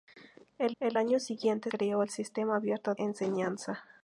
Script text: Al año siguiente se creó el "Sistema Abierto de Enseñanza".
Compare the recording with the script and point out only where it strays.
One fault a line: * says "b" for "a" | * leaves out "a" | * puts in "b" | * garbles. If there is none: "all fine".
* puts in "al"
* leaves out "se"
* leaves out "de"